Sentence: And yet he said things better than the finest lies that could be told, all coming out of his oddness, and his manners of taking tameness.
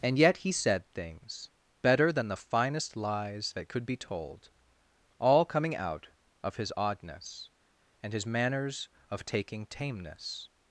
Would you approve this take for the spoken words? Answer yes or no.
yes